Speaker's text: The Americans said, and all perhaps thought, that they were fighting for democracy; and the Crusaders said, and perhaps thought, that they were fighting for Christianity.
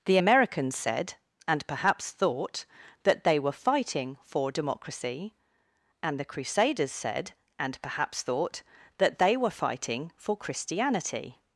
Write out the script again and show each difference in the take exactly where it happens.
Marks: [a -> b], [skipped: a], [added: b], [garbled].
The Americans said, and [skipped: all] perhaps thought, that they were fighting for democracy; and the Crusaders said, and perhaps thought, that they were fighting for Christianity.